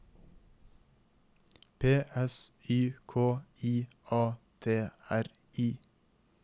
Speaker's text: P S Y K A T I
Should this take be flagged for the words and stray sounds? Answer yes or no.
yes